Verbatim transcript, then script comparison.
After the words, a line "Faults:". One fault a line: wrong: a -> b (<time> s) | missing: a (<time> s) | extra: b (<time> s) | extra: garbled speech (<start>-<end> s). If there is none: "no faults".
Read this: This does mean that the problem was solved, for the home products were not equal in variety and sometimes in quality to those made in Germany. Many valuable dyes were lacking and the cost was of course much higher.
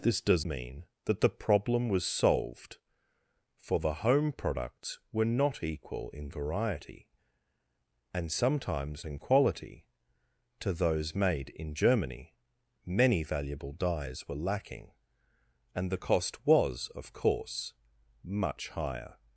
This does mean that the problem was solved, for the home products were not equal in variety and sometimes in quality to those made in Germany. Many valuable dyes were lacking and the cost was of course much higher.
Faults:
no faults